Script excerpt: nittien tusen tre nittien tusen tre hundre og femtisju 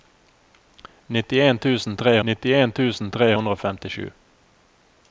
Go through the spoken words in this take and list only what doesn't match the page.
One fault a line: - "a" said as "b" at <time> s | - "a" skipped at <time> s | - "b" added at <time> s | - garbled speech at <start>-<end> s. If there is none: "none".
none